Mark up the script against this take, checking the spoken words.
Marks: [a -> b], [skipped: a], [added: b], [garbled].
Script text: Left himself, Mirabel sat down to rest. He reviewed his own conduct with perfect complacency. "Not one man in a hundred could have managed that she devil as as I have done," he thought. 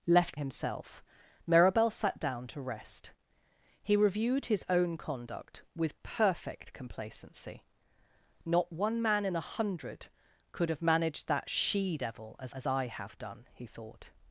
Left himself, Mirabel sat down to rest. He reviewed his own conduct with perfect complacency. "Not one man in a hundred could have managed that she devil as as I have done," he thought.